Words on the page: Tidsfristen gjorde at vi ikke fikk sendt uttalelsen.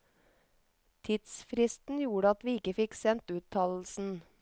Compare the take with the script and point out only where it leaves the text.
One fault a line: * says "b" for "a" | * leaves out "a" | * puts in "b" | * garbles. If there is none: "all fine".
all fine